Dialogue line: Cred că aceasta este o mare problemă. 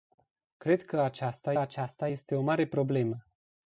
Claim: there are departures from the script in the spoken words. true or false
true